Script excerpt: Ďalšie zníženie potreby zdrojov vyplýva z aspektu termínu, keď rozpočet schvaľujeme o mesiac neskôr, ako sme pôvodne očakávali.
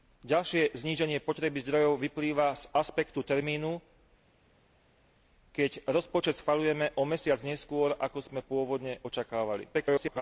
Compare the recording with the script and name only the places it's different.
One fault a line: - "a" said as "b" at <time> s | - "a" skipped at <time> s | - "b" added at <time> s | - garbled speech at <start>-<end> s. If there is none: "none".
- garbled speech at 9.7-10.2 s